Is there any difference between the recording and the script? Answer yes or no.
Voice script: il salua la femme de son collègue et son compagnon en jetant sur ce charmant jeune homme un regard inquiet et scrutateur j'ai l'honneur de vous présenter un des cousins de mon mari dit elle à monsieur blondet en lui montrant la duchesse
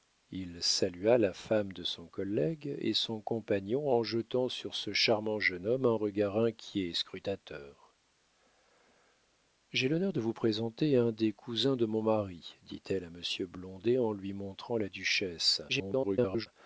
yes